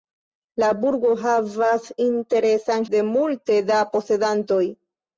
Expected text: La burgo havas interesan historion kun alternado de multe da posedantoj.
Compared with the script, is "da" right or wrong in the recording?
right